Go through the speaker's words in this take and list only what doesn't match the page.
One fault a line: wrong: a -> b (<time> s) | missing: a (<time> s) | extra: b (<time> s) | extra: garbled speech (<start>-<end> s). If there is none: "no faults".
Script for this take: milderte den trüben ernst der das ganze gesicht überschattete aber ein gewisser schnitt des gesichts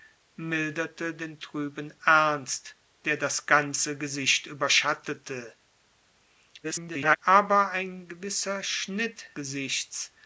extra: garbled speech (6.6-7.2 s)
missing: des (9.2 s)